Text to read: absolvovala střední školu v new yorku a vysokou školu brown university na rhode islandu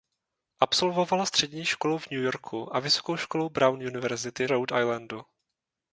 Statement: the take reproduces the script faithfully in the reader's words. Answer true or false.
false